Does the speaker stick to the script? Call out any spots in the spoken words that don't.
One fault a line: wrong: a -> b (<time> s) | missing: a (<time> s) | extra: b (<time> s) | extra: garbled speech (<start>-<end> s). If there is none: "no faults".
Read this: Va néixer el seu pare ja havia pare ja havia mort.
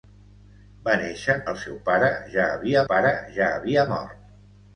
no faults